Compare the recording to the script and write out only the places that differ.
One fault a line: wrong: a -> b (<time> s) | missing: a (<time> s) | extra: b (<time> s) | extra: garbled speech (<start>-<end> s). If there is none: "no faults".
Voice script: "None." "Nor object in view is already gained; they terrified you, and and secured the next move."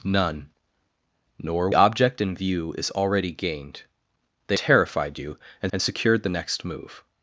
no faults